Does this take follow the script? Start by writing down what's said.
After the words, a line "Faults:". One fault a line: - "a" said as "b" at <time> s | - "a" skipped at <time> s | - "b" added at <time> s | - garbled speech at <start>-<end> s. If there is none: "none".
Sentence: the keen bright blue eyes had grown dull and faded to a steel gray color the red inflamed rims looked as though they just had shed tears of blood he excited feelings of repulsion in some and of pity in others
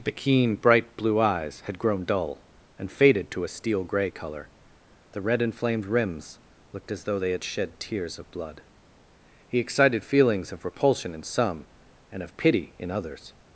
the keen bright blue eyes had grown dull and faded to a steel gray color the red inflamed rims looked as though they had shed tears of blood he excited feelings of repulsion in some and of pity in others
Faults:
- "just" skipped at 7.3 s